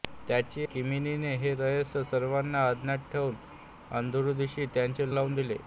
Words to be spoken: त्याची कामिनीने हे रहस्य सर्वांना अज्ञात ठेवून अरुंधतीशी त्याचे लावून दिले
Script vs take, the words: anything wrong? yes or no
no